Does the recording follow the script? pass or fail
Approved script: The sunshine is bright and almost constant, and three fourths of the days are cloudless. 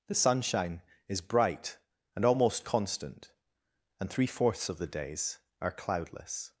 pass